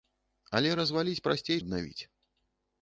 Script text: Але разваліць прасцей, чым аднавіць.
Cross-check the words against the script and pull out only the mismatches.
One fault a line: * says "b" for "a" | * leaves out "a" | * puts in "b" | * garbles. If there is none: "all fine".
* leaves out "чым"